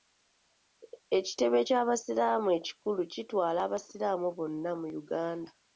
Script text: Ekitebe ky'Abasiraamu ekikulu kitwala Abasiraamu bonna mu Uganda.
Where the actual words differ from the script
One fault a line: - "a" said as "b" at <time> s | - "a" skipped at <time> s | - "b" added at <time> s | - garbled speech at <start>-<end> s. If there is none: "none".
none